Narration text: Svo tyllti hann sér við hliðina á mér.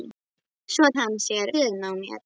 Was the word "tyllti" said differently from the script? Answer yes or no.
yes